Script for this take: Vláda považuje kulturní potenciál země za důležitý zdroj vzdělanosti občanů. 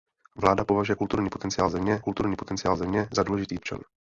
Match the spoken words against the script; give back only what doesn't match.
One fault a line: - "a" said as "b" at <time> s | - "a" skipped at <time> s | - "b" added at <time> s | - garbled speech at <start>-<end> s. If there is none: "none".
- "kulturní potenciál země" added at 2.0 s
- "zdroj vzdělanosti" skipped at 3.6 s